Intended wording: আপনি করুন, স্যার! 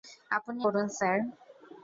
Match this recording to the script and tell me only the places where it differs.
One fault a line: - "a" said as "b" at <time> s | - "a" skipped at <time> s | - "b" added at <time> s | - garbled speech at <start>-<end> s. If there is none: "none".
none